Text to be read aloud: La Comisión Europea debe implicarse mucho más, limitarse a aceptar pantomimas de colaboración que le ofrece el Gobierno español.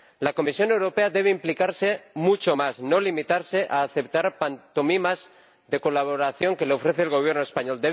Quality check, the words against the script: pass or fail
fail